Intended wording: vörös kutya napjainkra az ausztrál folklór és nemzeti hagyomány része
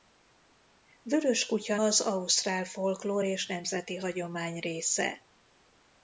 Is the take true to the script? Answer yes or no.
no